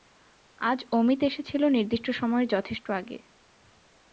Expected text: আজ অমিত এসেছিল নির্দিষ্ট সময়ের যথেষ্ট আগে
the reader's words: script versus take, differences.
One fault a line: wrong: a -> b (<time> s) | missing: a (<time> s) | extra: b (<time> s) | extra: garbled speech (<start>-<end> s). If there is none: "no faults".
no faults